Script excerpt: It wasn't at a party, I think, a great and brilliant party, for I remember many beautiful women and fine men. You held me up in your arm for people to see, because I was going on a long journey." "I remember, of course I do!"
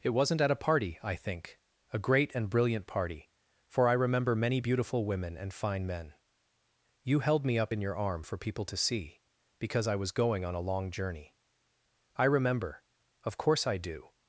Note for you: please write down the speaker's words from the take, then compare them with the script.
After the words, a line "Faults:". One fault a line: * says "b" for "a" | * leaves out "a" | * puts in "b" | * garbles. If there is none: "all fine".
It wasn't at a party, I think, a great and brilliant party, for I remember many beautiful women and fine men. You held me up in your arm for people to see, because I was going on a long journey." "I remember, of course I do!"
Faults:
all fine